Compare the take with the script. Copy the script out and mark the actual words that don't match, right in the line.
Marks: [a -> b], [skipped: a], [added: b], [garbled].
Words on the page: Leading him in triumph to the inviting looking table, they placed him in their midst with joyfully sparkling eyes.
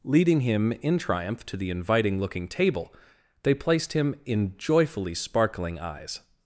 Leading him in triumph to the inviting looking table, they placed him in [skipped: their midst with] joyfully sparkling eyes.